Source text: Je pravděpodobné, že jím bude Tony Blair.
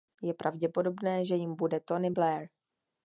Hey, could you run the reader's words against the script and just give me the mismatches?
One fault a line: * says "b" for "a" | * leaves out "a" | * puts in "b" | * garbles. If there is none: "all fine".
all fine